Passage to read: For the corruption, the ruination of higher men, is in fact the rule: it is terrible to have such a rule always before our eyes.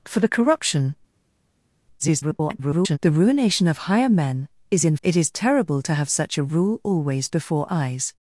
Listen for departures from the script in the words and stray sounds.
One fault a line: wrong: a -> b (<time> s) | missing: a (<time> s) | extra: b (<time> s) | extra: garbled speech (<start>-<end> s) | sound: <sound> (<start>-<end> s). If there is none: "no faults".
extra: garbled speech (2.0-3.0 s)
missing: fact the rule (5.0 s)
missing: our (7.7 s)